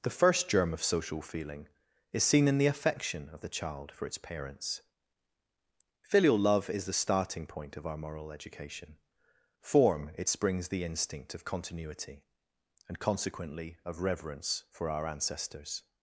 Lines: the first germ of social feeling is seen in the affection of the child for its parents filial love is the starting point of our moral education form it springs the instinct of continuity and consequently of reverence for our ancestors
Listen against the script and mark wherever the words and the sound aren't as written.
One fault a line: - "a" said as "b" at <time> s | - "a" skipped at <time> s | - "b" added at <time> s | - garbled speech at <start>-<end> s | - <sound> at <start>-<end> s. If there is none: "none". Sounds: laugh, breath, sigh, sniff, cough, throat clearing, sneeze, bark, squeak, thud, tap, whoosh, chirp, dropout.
none